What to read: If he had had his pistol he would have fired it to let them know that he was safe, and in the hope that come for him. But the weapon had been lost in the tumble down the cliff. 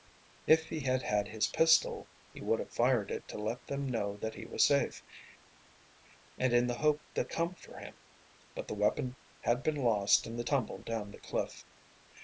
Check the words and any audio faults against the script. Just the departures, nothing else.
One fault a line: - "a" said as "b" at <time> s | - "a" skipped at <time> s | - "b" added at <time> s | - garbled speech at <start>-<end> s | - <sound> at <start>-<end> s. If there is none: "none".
none